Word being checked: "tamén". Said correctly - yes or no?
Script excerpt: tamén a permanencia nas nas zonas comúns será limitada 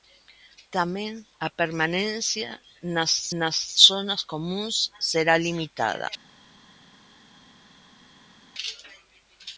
yes